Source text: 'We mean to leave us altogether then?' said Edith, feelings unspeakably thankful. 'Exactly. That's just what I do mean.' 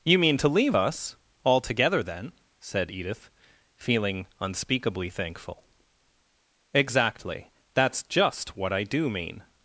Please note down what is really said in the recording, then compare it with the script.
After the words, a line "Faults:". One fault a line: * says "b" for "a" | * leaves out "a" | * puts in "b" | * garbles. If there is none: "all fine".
'You mean to leave us altogether then?' said Edith, feeling unspeakably thankful. 'Exactly. That's just what I do mean.'
Faults:
* says "You" for "We"
* says "feeling" for "feelings"